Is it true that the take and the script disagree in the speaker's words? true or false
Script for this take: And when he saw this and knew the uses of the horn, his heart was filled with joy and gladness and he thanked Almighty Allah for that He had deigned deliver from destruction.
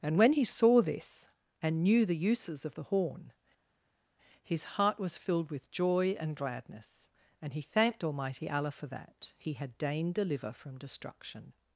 false